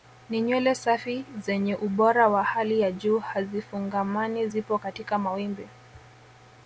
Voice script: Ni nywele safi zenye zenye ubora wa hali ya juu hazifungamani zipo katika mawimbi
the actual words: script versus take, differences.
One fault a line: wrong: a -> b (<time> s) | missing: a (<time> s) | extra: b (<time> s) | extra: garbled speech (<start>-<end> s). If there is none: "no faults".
missing: zenye (1.8 s)